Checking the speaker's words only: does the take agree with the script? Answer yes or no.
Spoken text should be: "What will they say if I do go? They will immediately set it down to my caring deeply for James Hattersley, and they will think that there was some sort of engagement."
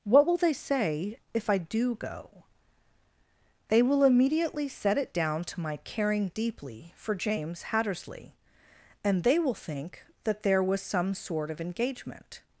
yes